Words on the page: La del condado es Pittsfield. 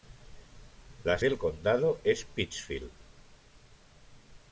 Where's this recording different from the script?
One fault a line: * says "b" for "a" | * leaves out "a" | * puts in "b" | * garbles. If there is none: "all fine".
all fine